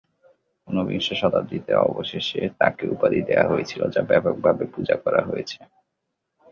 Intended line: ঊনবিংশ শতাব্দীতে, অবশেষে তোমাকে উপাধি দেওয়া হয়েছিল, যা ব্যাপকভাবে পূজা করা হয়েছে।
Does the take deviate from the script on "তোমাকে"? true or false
true